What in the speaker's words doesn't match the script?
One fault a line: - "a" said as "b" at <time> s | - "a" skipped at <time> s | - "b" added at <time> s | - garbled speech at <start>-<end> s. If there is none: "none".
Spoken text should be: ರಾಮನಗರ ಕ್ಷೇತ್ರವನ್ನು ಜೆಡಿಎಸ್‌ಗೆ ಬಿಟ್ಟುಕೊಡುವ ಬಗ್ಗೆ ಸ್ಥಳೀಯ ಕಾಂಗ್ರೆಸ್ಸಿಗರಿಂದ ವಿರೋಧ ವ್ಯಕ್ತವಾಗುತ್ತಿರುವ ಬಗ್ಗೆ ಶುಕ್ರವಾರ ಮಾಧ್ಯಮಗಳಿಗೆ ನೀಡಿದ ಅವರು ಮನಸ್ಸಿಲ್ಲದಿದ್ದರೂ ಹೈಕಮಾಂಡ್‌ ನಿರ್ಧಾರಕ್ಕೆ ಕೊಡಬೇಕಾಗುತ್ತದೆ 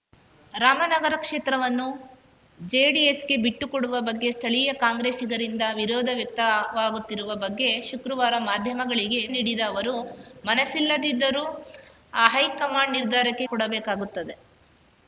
none